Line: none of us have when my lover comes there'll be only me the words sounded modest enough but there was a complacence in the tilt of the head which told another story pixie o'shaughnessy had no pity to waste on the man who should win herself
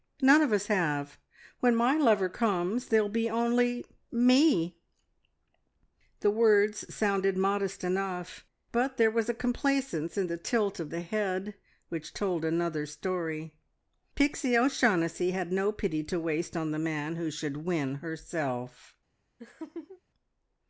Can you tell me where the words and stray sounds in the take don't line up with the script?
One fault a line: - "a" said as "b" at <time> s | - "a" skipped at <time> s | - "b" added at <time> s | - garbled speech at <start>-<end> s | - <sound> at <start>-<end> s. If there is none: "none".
- laugh at 19.4-20.0 s